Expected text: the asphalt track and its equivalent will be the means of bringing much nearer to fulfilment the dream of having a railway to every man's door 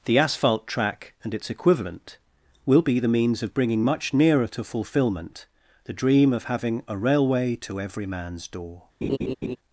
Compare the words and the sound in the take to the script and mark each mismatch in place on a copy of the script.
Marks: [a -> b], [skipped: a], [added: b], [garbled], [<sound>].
the asphalt track and its equivalent will be the means of bringing much nearer to fulfilment the dream of having a railway to every man's door [laugh]